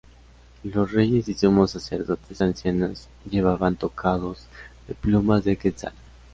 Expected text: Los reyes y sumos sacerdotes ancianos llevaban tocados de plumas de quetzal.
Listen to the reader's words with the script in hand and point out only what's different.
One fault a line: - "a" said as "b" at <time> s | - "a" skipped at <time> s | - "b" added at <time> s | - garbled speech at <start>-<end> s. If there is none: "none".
none